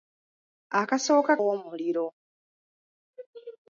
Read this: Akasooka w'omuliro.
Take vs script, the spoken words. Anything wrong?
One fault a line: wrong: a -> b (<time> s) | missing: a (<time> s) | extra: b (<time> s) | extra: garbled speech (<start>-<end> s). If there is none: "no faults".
no faults